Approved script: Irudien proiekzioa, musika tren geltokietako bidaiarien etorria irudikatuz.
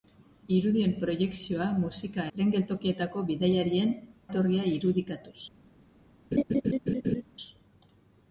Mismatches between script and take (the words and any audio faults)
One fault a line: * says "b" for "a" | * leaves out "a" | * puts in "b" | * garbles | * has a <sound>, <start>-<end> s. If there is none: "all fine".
* has a laugh, 6.3-7.2 s